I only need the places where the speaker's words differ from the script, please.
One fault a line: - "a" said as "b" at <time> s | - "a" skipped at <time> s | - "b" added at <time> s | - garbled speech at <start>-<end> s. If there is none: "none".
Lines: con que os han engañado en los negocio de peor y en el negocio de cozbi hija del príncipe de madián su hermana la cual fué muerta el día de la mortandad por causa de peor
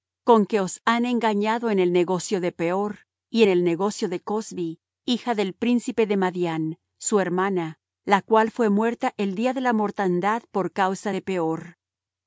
- "los" said as "el" at 1.8 s